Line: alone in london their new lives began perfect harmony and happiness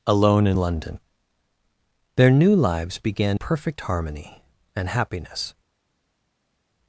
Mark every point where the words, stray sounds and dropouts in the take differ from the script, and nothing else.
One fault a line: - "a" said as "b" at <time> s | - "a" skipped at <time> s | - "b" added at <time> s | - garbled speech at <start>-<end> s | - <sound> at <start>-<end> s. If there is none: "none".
none